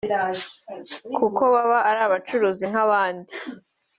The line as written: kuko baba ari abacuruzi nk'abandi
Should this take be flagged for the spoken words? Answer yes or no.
no